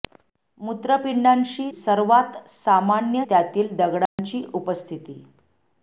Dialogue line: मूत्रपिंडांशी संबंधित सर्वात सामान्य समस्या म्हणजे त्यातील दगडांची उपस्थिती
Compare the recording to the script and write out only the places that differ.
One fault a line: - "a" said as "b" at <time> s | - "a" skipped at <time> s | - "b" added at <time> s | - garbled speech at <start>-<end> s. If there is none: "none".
- "संबंधित" skipped at 1.7 s
- "समस्या म्हणजे" skipped at 3.2 s